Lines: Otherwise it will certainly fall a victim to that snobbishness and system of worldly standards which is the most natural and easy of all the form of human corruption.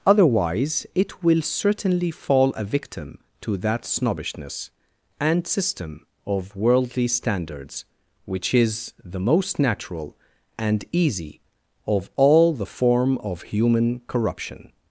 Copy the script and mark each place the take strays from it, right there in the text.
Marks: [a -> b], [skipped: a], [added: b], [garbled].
Otherwise it will certainly fall a victim to that snobbishness and system of worldly standards which is the most natural and easy of all the form of human corruption.